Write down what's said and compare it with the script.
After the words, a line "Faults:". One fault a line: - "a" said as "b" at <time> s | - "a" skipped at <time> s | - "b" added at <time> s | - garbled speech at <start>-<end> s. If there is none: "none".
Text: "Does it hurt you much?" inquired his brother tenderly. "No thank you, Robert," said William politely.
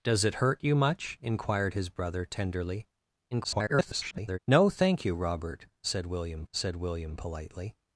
"Does it hurt you much?" inquired his brother tenderly. [garbled] "No thank you, Robert," said William said William politely.
Faults:
- garbled speech at 3.3-4.4 s
- "said William" added at 6.5 s